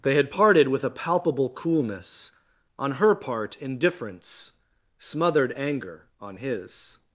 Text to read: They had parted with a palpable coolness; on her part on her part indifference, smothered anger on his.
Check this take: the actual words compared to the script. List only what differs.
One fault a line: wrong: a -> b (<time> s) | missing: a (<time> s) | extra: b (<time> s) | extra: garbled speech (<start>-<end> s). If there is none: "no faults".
missing: on her part (3.6 s)